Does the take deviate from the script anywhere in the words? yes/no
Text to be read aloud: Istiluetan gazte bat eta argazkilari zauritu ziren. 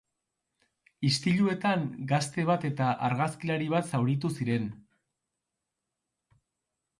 yes